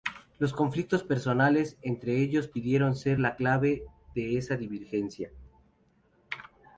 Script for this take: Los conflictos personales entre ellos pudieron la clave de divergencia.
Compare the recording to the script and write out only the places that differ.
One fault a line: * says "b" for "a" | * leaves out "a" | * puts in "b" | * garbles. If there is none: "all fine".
* puts in "ser"
* puts in "esa"